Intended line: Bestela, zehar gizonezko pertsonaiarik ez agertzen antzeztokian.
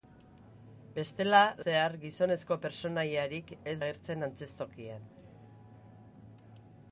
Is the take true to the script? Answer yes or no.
yes